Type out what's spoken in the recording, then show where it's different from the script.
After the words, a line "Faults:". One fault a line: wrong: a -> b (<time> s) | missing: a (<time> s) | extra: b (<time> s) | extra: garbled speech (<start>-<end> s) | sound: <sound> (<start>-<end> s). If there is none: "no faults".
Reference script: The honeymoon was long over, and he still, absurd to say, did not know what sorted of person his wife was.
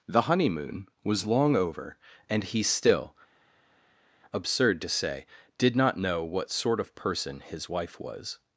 The honeymoon was long over, and he still, absurd to say, did not know what sort of person his wife was.
Faults:
wrong: sorted -> sort (6.5 s)